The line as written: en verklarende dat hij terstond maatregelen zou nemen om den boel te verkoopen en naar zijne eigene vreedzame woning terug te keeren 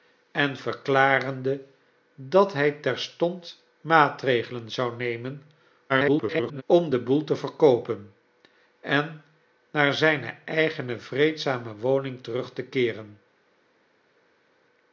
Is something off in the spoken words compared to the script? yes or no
yes